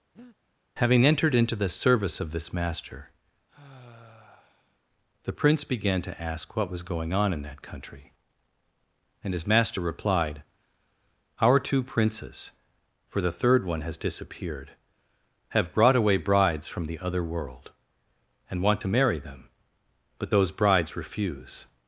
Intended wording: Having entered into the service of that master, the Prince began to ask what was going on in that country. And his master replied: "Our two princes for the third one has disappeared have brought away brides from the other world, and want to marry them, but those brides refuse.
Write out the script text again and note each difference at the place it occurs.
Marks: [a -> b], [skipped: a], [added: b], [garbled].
Having entered into the service of [that -> this] master, the Prince began to ask what was going on in that country. And his master replied: "Our two princes for the third one has disappeared have brought away brides from the other world, and want to marry them, but those brides refuse.